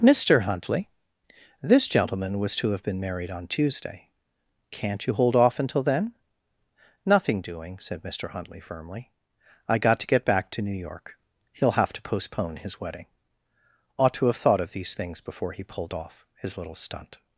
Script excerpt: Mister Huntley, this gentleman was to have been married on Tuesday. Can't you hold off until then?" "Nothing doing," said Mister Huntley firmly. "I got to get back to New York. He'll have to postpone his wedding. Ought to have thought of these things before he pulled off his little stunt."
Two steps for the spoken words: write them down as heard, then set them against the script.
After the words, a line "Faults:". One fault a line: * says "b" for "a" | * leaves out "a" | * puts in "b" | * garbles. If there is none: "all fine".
Mister Huntley, this gentleman was to have been married on Tuesday. Can't you hold off until then?" "Nothing doing," said Mister Huntley firmly. "I got to get back to New York. He'll have to postpone his wedding. Ought to have thought of these things before he pulled off his little stunt."
Faults:
all fine